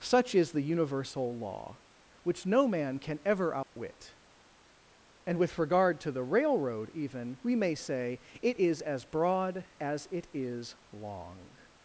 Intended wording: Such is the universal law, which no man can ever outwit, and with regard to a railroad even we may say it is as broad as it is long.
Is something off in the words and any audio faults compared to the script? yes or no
yes